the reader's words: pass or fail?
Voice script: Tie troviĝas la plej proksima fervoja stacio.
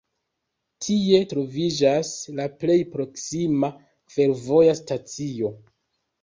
pass